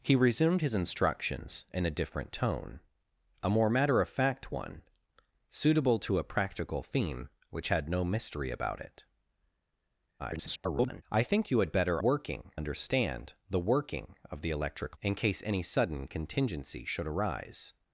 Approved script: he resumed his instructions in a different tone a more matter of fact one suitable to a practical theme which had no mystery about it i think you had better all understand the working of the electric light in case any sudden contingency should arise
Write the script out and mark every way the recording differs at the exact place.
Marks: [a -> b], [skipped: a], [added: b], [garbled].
he resumed his instructions in a different tone a more matter of fact one suitable to a practical theme which had no mystery about it [garbled] i think you had better [all -> working] understand the working of the electric [skipped: light] in case any sudden contingency should arise